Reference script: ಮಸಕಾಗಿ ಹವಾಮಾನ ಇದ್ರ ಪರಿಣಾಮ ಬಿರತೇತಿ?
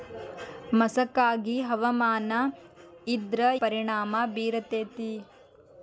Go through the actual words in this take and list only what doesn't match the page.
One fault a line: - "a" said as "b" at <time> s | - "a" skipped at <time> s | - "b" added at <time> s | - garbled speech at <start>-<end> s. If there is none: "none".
none